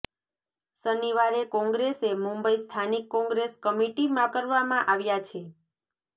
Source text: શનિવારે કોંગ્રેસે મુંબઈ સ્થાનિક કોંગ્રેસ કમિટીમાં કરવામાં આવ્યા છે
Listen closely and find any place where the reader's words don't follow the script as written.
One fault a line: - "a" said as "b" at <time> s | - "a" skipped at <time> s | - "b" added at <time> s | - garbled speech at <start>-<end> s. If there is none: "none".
none